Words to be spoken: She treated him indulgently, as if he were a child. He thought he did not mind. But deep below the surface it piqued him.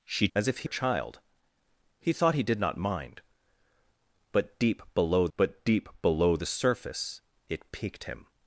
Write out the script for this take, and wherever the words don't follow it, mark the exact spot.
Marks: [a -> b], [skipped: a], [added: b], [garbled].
She [skipped: treated him indulgently,] as if he [skipped: were] a child. He thought he did not mind. But deep below [added: but deep below] the surface it piqued him.